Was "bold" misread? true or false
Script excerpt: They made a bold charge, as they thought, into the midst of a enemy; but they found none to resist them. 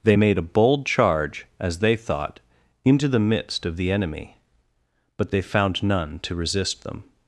false